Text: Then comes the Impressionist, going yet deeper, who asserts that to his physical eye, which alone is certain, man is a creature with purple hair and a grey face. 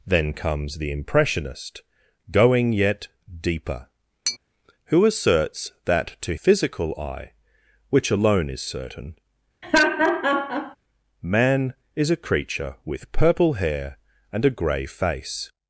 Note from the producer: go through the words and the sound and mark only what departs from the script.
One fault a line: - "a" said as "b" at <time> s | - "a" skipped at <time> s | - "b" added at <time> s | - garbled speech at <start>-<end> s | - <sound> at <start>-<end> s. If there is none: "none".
- tap at 4.3-4.4 s
- "his" skipped at 6.3 s
- laugh at 9.6-10.8 s